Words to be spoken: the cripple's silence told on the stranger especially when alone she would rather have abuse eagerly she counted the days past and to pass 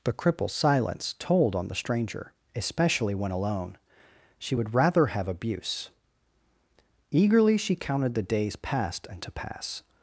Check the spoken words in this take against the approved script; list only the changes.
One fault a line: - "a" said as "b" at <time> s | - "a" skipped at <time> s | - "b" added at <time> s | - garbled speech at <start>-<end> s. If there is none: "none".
none